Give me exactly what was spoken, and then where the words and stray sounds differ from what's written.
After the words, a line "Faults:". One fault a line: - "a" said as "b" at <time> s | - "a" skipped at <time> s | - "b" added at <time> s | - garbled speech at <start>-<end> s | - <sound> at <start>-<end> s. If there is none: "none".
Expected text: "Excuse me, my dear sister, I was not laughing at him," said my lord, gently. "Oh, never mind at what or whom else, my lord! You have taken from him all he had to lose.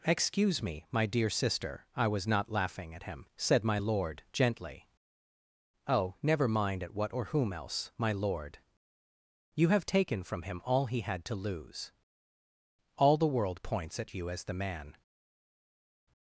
"Excuse me, my dear sister, I was not laughing at him," said my lord, gently. "Oh, never mind at what or whom else, my lord! You have taken from him all he had to lose. All the world points at you as the man
Faults:
- "All the world points at you as the man" added at 13.0 s